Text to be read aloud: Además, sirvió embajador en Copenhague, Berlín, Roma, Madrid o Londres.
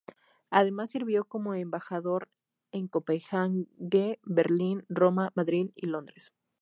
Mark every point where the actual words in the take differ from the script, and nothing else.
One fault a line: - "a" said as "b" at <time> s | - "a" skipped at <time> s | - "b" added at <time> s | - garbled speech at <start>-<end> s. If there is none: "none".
- "como" added at 1.2 s
- "o" said as "y" at 5.7 s